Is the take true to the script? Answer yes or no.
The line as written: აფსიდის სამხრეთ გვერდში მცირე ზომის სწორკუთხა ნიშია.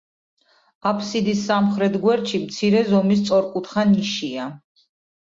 yes